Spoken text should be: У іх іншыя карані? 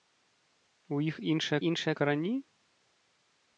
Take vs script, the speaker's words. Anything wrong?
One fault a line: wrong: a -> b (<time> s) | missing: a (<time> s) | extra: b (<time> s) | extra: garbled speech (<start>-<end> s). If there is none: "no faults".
extra: іншыя (1.7 s)